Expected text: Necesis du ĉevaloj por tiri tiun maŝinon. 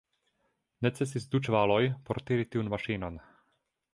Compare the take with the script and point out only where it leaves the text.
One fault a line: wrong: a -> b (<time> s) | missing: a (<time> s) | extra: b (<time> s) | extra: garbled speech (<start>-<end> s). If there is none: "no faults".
no faults